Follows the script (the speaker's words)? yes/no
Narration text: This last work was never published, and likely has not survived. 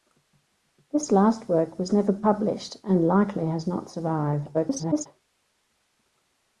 no